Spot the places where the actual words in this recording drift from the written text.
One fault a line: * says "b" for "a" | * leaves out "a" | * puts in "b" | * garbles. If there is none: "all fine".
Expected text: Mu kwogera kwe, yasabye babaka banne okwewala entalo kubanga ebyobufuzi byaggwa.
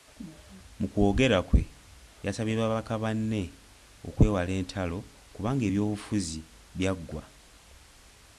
all fine